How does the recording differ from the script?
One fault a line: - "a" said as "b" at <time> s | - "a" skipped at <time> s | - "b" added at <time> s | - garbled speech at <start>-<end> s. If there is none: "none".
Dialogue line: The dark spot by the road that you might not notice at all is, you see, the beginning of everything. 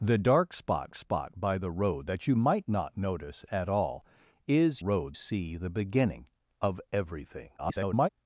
- "spot" added at 0.9 s
- "you" said as "road" at 4.8 s
- garbled speech at 7.6-8.1 s